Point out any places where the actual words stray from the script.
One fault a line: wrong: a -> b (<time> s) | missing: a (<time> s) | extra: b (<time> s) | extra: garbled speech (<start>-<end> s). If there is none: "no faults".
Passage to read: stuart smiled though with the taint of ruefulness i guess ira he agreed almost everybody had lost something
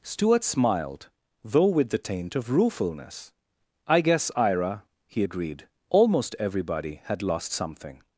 no faults